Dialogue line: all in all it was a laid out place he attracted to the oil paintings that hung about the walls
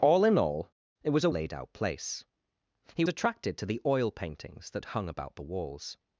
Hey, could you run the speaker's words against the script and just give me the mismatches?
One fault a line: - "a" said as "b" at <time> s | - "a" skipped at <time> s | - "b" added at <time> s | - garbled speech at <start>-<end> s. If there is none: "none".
none